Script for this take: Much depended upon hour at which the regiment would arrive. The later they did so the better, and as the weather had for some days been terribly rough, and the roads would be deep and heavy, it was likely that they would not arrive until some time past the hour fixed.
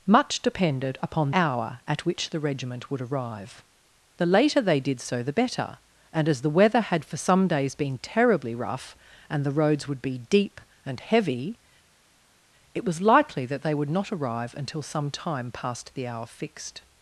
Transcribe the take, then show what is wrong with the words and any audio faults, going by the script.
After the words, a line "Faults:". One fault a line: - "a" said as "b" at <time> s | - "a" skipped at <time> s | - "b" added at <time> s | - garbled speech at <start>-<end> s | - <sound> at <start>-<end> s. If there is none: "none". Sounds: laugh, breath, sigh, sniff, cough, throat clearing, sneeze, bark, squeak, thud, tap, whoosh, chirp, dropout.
Much depended upon hour at which the regiment would arrive. The later they did so the better, and as the weather had for some days been terribly rough, and the roads would be deep and heavy, it was likely that they would not arrive until some time past the hour fixed.
Faults:
none